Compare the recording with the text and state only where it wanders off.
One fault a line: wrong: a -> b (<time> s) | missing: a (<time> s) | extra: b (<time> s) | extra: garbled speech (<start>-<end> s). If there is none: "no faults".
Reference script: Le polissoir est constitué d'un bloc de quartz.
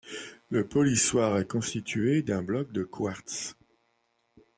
no faults